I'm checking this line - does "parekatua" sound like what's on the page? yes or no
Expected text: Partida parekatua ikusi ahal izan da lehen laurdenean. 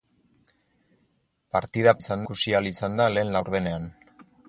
no